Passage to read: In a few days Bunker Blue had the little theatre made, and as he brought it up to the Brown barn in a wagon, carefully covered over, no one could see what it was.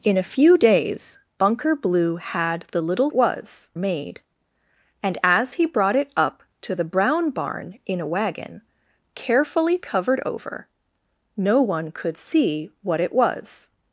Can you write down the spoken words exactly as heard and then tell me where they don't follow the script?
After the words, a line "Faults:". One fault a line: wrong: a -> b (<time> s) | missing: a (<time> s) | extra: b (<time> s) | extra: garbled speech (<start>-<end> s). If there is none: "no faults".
In a few days Bunker Blue had the little was made, and as he brought it up to the Brown barn in a wagon, carefully covered over, no one could see what it was.
Faults:
wrong: theatre -> was (3.1 s)